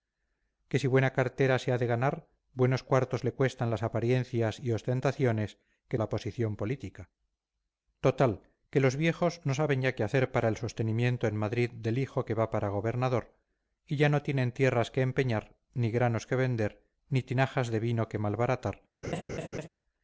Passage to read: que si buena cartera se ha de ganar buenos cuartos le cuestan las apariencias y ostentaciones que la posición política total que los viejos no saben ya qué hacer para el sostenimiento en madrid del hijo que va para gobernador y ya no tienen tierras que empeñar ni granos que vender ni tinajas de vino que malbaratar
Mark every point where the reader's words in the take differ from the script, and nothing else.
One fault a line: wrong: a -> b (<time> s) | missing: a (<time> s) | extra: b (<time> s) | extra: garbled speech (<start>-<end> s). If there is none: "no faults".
no faults